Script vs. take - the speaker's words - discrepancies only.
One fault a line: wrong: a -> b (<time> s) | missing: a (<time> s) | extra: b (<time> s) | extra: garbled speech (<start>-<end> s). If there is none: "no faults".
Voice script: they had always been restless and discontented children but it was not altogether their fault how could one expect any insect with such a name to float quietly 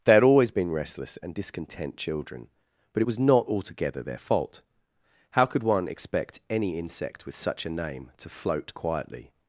wrong: discontented -> discontent (1.3 s)